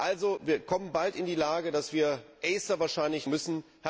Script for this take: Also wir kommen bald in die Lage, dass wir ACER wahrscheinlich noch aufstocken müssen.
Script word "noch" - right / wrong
wrong